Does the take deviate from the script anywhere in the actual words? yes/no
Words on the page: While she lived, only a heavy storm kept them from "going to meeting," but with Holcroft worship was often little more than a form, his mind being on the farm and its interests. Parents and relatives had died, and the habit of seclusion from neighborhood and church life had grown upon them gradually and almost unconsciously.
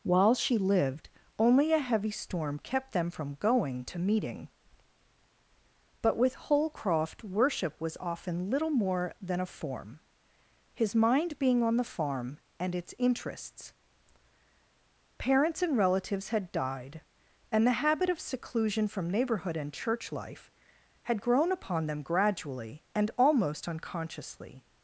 no